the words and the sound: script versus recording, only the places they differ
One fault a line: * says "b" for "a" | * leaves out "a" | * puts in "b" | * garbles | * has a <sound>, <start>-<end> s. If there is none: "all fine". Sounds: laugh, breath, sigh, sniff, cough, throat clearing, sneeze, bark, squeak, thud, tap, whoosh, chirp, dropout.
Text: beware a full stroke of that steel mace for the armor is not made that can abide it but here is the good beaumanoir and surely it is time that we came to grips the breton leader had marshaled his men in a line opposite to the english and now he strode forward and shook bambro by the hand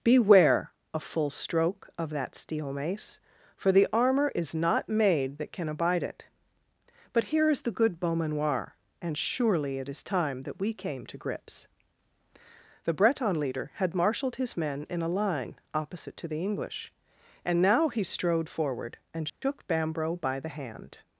* has a dropout, 19.3-19.4 s